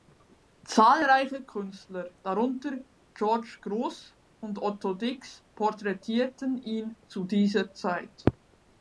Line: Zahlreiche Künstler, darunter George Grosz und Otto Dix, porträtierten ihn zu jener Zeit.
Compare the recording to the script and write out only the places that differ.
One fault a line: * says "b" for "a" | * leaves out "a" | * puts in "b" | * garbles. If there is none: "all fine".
* says "dieser" for "jener"